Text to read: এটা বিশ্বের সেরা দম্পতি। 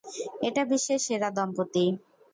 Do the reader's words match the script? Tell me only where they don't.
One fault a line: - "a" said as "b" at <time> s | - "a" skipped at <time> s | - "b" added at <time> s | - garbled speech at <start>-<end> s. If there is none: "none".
none